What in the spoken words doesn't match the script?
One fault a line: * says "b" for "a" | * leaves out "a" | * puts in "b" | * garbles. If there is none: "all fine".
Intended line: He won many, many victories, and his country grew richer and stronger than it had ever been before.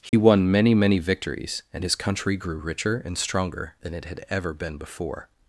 all fine